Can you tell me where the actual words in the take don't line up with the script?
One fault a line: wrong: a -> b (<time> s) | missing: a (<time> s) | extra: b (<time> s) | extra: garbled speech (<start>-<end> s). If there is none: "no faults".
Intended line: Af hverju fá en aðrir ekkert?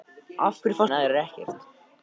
no faults